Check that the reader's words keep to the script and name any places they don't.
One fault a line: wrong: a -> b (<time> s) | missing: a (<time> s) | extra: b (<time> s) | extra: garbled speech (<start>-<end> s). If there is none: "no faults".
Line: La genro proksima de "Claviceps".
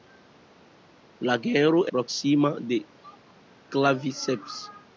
no faults